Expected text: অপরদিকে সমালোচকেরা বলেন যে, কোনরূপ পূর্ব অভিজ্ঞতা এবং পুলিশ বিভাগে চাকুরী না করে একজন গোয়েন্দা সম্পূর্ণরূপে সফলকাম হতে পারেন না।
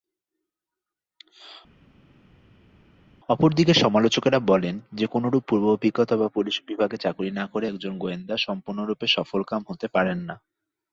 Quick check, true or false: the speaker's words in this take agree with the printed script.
false